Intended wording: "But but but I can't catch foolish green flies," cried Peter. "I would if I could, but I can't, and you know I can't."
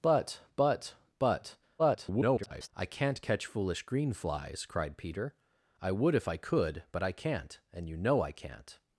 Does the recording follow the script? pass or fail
fail